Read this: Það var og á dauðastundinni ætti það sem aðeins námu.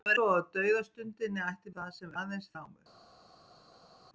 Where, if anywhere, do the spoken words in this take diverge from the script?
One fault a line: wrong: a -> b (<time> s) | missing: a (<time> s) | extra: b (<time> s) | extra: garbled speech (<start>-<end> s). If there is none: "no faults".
no faults